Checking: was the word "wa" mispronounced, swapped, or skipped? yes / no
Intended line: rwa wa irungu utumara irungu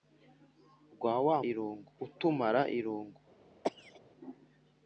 no